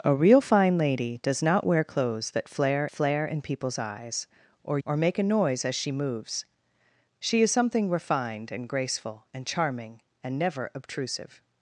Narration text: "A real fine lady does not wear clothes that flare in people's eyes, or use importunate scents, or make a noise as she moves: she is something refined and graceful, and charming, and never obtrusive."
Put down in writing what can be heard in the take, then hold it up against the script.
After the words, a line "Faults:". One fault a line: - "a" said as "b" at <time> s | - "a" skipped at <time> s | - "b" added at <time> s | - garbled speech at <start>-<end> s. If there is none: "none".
"A real fine lady does not wear clothes that flare flare in people's eyes, or or make a noise as she moves: she is something refined and graceful, and charming, and never obtrusive."
Faults:
- "flare" added at 2.9 s
- "use importunate scents" skipped at 4.8 s